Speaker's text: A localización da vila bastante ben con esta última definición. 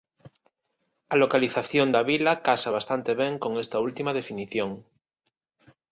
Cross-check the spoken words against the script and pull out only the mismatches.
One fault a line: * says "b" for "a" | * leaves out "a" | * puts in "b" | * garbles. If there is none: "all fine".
* puts in "casa"